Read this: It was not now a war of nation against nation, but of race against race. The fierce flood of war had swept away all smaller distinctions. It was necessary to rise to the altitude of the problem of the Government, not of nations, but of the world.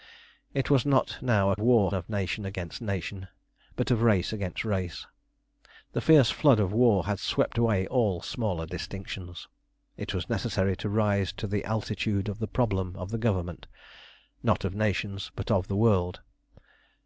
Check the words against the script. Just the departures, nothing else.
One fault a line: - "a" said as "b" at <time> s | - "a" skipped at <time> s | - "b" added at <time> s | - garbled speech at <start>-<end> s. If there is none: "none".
none